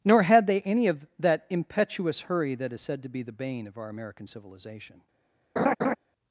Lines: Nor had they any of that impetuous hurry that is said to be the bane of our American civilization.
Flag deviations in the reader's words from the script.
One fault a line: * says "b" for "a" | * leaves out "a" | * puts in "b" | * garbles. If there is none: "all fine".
all fine